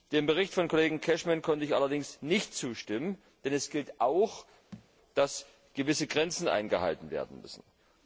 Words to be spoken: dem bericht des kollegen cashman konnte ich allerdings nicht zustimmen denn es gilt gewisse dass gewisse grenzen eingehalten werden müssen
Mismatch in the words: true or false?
true